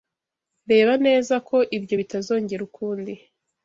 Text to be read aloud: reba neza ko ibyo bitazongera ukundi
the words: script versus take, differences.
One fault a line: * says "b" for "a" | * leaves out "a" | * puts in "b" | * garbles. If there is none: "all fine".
all fine